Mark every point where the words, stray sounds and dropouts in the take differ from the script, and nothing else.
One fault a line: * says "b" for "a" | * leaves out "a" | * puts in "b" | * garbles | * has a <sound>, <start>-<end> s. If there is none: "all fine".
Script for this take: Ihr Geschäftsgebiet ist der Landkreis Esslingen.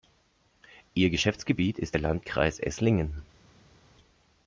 all fine